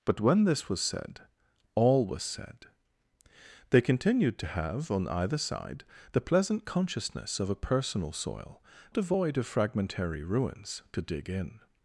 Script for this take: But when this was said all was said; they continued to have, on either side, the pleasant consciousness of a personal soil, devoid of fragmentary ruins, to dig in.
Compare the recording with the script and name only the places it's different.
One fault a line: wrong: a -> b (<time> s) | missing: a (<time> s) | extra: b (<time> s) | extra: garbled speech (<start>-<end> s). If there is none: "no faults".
no faults